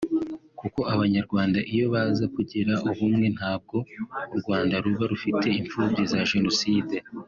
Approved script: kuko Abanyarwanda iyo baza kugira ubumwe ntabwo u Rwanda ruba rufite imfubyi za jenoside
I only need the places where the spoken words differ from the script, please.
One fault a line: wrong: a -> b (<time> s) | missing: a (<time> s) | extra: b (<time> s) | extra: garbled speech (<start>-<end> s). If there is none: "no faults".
no faults